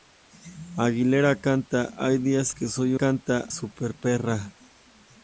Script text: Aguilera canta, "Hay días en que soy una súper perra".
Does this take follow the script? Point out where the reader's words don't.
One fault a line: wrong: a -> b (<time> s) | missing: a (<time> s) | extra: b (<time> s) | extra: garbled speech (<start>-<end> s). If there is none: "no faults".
missing: en (2.5 s)
wrong: una -> canta (3.0 s)